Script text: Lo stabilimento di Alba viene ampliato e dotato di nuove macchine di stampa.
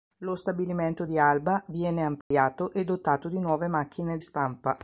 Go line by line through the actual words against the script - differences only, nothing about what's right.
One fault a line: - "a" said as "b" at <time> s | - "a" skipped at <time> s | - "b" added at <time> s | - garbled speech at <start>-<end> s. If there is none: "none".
- "di" skipped at 4.2 s